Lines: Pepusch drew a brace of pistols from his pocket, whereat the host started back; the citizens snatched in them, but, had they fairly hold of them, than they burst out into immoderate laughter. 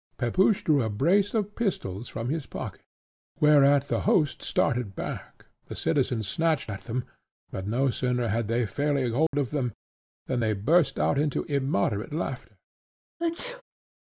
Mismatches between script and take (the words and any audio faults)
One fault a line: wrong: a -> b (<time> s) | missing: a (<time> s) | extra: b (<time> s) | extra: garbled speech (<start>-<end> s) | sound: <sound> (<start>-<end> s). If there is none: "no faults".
wrong: in -> at (6.7 s)
extra: no sooner (7.7 s)
sound: dropout (9.3-9.3 s)
sound: sneeze (13.2-13.6 s)